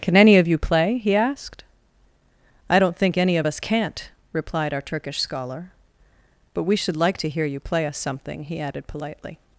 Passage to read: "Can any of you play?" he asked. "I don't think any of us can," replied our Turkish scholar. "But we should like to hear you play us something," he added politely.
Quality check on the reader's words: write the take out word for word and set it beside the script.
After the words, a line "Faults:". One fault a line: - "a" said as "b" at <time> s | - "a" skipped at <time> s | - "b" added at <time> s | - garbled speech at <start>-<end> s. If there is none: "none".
"Can any of you play?" he asked. "I don't think any of us can't," replied our Turkish scholar. "But we should like to hear you play us something," he added politely.
Faults:
- "can" said as "can't" at 3.6 s